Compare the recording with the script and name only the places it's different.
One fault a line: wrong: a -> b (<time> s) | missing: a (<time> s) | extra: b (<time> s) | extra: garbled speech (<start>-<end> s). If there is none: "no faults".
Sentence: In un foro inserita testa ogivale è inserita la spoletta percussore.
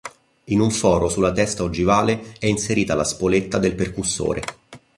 wrong: inserita -> sulla (1.1 s)
extra: del (3.6 s)